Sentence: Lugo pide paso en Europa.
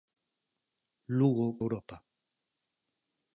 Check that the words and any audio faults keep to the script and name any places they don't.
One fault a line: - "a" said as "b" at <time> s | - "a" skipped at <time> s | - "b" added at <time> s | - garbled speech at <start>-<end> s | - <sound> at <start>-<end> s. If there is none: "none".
- "pide paso en" skipped at 1.5 s